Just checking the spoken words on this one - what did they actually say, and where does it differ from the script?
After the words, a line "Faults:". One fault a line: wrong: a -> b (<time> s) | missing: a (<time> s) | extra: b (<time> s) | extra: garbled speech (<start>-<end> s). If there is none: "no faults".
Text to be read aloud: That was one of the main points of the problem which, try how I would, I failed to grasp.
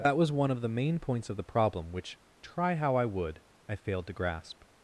That was one of the main points of the problem which, try how I would, I failed to grasp.
Faults:
no faults